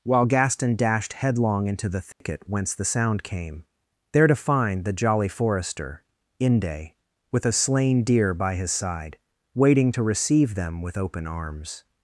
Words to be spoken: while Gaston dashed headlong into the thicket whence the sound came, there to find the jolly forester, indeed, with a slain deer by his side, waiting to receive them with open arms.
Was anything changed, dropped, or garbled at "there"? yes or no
no